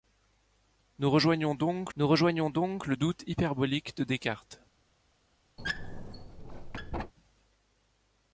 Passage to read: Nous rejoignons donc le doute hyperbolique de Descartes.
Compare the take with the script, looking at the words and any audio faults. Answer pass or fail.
fail